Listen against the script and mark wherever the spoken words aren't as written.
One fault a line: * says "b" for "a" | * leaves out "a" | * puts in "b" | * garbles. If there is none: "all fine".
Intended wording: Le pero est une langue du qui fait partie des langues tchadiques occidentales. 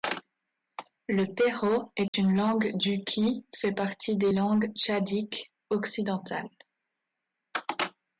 all fine